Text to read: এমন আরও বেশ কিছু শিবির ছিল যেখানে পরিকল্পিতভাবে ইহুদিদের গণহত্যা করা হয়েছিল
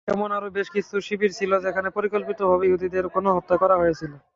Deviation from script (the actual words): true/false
false